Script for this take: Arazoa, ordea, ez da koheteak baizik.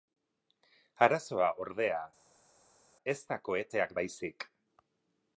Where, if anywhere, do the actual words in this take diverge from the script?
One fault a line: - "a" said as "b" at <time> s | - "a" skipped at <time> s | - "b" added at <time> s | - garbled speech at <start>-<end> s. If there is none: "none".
none